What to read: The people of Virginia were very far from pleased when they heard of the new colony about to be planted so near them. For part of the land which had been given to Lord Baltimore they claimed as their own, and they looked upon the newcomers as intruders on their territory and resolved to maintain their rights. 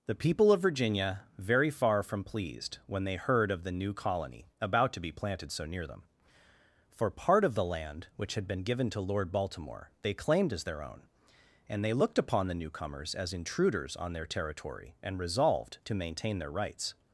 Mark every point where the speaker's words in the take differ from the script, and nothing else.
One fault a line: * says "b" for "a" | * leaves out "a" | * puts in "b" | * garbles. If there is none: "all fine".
* leaves out "were"